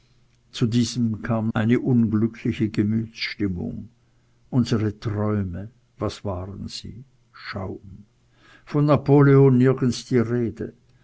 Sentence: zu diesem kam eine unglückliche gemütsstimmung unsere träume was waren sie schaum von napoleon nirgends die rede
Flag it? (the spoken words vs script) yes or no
no